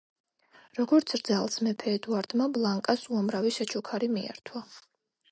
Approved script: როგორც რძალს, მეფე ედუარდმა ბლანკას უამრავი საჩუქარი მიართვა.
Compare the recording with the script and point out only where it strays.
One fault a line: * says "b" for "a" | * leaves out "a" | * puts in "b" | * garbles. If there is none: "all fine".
all fine